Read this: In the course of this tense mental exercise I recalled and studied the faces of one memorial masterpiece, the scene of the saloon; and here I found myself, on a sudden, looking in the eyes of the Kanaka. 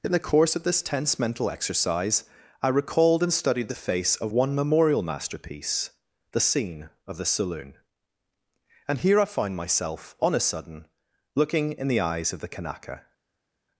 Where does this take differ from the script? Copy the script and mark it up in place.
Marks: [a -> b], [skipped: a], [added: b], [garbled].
In the course of this tense mental exercise I recalled and studied the [faces -> face] of one memorial masterpiece, the scene of the saloon; and here I found myself, on a sudden, looking in the eyes of the Kanaka.